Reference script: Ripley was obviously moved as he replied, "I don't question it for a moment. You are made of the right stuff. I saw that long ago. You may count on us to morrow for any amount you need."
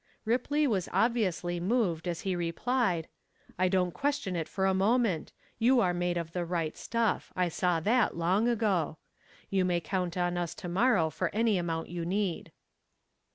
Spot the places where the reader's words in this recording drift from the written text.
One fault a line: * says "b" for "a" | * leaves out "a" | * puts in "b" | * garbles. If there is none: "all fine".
all fine